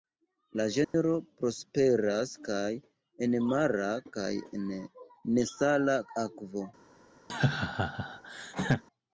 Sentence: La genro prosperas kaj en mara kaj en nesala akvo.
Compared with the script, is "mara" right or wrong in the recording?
right